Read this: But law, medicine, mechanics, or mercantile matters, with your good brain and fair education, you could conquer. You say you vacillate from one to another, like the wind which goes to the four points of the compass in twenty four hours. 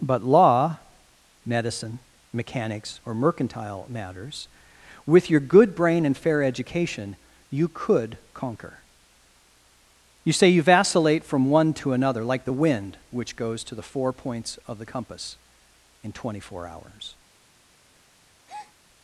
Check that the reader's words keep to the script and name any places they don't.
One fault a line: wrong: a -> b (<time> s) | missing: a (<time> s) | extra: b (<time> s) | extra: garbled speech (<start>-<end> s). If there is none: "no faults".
no faults